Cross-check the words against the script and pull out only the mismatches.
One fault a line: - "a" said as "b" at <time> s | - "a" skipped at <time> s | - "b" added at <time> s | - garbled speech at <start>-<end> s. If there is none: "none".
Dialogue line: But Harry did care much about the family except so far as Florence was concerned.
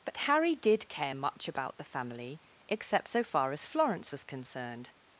none